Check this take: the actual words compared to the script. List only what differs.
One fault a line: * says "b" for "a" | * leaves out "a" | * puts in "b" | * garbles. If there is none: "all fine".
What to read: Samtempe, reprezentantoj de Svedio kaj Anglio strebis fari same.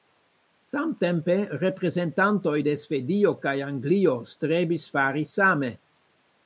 all fine